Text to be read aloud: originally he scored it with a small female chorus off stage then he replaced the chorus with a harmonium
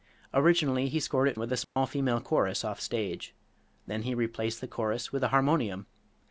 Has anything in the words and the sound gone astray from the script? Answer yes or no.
yes